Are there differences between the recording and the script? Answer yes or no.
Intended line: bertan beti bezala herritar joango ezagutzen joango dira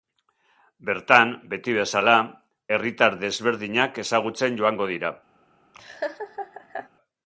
yes